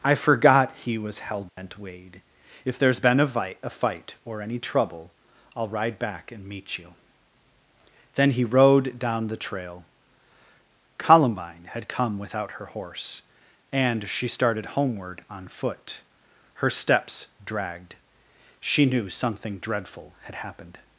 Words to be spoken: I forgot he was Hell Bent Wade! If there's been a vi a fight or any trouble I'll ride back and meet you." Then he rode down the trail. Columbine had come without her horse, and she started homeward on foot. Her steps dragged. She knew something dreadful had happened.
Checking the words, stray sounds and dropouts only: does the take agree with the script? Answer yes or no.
no